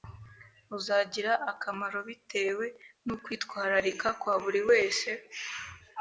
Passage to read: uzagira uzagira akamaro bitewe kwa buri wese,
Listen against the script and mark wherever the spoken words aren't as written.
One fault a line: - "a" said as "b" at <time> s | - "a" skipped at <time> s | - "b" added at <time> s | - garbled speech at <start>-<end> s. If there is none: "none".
- "uzagira" skipped at 1.3 s
- "n'ukwitwararika" added at 3.0 s